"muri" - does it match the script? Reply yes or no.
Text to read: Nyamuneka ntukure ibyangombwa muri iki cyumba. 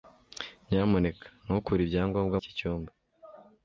no